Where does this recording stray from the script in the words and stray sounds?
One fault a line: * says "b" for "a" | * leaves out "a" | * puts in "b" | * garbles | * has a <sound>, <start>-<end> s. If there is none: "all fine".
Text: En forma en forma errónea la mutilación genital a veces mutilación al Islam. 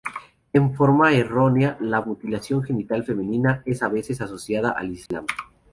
* leaves out "en forma"
* puts in "femenina es"
* says "asociada" for "mutilación"
* has a dropout, 5.1-5.1 s